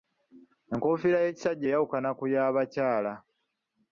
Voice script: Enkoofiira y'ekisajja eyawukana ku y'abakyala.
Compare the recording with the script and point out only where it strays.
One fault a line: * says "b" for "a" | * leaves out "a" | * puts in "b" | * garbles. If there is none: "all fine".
all fine